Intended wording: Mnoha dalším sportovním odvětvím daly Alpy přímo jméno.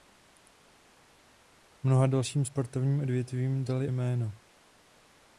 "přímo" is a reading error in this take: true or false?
true